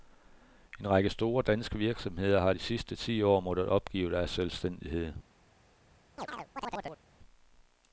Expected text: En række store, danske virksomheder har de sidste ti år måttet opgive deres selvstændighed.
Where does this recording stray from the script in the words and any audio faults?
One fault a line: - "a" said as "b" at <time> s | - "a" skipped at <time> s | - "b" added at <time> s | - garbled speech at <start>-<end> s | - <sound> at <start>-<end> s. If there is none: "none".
- chirp at 6.2-7.0 s